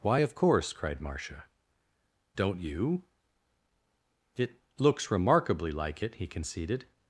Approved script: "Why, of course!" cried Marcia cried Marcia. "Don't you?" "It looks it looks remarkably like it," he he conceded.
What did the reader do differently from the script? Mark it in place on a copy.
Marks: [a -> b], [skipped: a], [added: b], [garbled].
"Why, of course!" cried Marcia [skipped: cried Marcia.] "Don't you?" "It looks [skipped: it looks] remarkably like it," he [skipped: he] conceded.